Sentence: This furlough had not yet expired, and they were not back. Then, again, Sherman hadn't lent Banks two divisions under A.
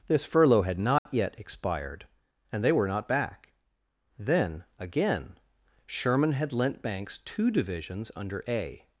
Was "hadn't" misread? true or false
true